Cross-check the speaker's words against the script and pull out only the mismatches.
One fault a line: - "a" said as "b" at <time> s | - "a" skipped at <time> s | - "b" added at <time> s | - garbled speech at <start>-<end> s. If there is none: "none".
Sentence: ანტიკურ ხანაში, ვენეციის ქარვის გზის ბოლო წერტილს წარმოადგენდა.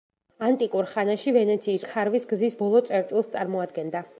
none